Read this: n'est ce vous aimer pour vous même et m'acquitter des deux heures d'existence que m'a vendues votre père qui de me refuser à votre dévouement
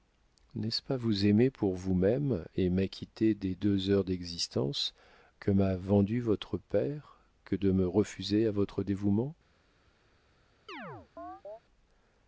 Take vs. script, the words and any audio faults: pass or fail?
fail